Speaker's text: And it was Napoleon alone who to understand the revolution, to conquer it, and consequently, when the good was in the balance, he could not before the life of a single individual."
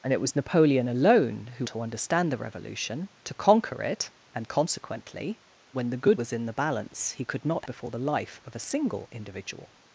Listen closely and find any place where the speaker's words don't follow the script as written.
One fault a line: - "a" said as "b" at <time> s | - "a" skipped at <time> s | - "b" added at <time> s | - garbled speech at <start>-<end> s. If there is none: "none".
none